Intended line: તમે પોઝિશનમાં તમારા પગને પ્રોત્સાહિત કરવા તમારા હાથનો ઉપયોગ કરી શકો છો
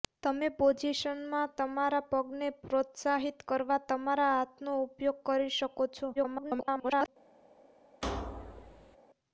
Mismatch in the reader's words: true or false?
true